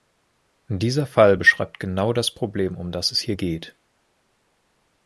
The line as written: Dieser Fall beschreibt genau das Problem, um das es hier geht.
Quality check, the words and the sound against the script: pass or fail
pass